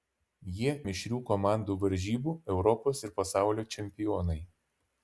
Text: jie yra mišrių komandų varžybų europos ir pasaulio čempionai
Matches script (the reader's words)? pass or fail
fail